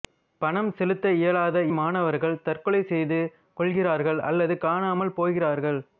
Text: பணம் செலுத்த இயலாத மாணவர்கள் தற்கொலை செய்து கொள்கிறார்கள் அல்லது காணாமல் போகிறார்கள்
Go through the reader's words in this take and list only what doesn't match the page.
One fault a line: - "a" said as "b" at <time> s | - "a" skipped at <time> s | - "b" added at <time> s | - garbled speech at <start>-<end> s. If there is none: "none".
none